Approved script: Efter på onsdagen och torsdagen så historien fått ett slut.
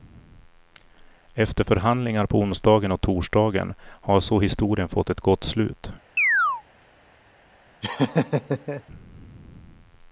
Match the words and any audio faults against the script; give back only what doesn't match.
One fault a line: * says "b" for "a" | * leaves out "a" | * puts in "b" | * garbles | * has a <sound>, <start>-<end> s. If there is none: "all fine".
* puts in "förhandlingar"
* puts in "har"
* puts in "gott"
* has a chirp, 6.2-6.6 s
* has a laugh, 7.8-8.8 s